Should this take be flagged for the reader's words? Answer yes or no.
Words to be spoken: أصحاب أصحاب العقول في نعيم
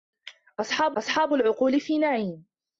no